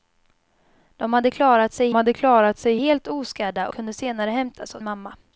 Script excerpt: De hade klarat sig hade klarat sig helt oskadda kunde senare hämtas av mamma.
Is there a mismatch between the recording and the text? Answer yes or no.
no